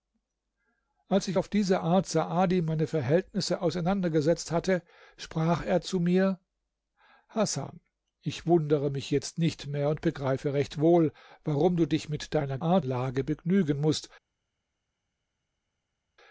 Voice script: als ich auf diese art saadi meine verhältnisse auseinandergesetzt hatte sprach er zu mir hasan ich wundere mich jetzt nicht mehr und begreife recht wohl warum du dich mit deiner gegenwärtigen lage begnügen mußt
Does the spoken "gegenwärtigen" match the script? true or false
false